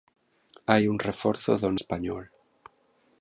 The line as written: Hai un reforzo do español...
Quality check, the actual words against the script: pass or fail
pass